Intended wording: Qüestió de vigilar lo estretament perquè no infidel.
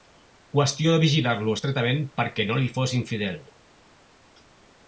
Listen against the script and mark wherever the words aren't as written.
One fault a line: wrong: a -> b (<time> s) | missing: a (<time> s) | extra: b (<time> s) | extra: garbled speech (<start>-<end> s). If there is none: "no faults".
extra: li fos (2.6 s)